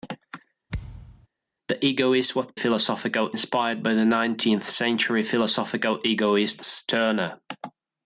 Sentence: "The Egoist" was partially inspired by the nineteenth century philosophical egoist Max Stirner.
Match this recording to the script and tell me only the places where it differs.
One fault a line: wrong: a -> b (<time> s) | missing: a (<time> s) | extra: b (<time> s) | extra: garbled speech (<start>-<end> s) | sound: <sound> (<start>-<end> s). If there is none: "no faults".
sound: thud (0.7-1.3 s)
wrong: partially -> philosophical (2.5 s)
missing: Max (6.7 s)